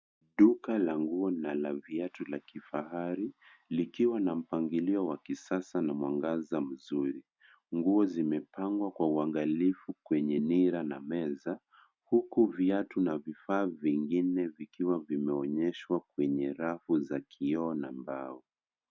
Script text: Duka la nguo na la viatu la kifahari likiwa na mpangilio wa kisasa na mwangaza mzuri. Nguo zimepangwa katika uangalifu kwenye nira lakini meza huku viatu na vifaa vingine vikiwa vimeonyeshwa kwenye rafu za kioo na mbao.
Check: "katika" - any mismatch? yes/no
yes